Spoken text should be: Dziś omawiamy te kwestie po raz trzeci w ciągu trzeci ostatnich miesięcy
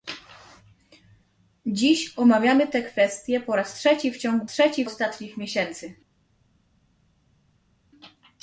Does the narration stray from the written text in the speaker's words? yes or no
no